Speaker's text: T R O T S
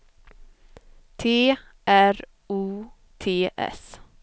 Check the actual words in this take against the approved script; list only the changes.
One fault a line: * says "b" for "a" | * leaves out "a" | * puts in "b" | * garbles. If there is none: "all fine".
all fine